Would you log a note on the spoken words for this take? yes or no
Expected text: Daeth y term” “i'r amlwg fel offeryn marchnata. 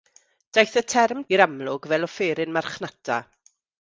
no